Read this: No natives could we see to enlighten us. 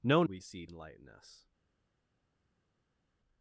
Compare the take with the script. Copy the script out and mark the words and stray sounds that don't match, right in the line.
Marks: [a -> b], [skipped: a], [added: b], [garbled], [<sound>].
No [skipped: natives could] we see [skipped: to] enlighten us.